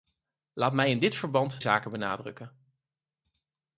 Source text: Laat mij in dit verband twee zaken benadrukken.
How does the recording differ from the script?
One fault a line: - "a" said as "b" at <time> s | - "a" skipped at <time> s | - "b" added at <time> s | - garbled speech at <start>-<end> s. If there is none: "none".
- "twee" skipped at 1.6 s